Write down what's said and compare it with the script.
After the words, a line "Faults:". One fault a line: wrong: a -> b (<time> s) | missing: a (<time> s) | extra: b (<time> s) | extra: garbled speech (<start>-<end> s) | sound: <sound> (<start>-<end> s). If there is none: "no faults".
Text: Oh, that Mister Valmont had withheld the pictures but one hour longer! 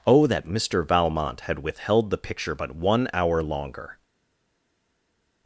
Oh, that Mister Valmont had withheld the picture but one hour longer!
Faults:
wrong: pictures -> picture (2.2 s)